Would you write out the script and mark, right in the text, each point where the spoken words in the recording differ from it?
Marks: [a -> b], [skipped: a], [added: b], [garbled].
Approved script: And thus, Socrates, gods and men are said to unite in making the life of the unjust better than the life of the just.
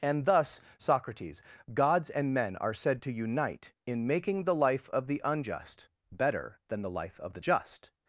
And thus, Socrates, gods and men are said to unite in making the life of the unjust better than the life of the just.